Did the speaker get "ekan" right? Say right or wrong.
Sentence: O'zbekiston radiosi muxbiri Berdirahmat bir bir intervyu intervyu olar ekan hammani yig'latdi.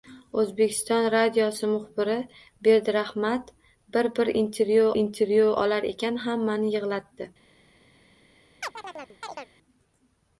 right